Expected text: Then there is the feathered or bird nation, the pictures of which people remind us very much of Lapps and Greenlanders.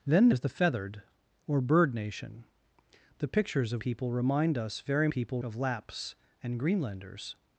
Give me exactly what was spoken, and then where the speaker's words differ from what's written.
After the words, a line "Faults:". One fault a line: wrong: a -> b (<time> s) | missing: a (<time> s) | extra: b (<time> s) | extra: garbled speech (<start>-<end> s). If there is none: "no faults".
Then is the feathered or bird nation, the pictures of people remind us very people of Lapps and Greenlanders.
Faults:
missing: there (0.3 s)
missing: which (3.8 s)
wrong: much -> people (5.1 s)